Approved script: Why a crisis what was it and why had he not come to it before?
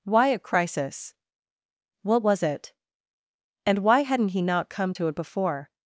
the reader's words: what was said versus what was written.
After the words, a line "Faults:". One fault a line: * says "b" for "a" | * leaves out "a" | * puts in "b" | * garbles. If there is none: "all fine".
Why a crisis what was it and why hadn't he not come to it before?
Faults:
* says "hadn't" for "had"